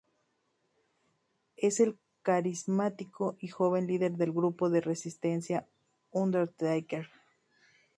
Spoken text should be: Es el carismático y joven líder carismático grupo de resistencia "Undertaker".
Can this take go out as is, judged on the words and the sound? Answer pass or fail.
fail